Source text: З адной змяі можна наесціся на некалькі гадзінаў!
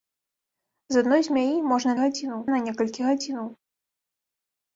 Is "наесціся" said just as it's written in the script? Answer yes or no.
no